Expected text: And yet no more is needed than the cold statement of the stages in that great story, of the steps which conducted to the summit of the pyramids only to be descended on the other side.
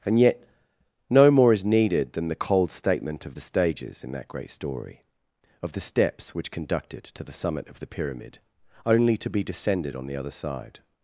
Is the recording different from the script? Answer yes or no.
yes